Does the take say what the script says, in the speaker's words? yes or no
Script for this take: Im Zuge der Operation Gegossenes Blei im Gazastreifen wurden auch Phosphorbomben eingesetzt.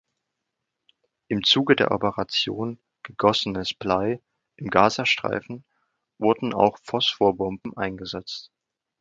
yes